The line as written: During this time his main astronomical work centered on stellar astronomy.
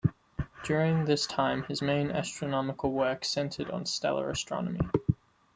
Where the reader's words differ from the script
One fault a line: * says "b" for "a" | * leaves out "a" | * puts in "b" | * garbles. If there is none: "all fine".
all fine